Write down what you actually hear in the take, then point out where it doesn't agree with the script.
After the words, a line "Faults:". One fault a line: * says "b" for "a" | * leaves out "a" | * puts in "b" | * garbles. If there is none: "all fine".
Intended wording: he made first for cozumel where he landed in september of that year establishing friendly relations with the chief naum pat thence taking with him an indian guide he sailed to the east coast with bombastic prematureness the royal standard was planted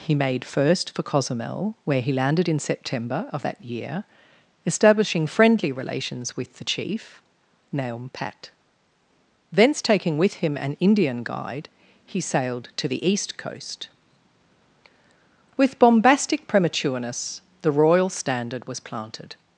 he made first for cozumel where he landed in september of that year establishing friendly relations with the chief naum pat thence taking with him an indian guide he sailed to the east coast with bombastic prematureness the royal standard was planted
Faults:
all fine